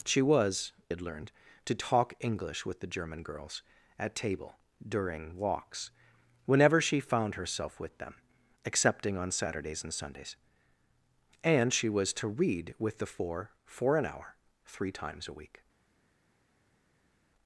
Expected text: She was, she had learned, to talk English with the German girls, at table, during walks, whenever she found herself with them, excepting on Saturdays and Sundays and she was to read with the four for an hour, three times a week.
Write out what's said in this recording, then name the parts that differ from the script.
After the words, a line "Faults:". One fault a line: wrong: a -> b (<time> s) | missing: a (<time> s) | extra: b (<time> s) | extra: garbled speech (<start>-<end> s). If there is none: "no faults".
She was, had learned, to talk English with the German girls, at table, during walks, whenever she found herself with them, excepting on Saturdays and Sundays and she was to read with the four for an hour, three times a week.
Faults:
missing: she (0.7 s)